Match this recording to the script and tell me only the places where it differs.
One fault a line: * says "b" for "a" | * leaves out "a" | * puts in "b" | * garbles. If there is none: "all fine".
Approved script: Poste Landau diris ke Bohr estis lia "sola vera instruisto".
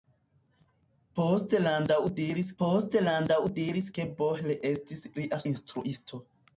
* puts in "poste Landau diris"
* leaves out "sola vera"